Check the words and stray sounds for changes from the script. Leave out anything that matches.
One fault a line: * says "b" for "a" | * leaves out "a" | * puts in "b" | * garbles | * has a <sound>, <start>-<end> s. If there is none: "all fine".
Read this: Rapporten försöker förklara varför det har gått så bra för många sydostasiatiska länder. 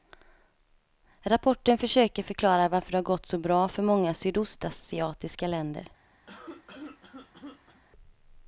* has a cough, 6.3-7.8 s